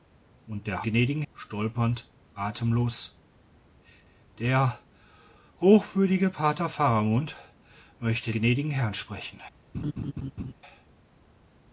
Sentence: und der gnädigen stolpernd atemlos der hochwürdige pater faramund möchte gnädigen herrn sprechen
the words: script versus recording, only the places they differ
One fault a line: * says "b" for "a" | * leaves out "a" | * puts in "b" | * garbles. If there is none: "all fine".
all fine